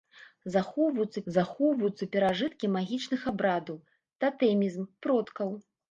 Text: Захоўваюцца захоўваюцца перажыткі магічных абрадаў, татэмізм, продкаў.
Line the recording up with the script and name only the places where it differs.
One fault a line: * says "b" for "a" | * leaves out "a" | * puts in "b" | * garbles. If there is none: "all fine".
all fine